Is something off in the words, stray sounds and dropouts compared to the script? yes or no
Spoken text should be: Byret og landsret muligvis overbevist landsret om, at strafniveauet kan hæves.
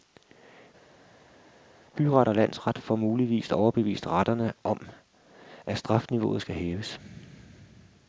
yes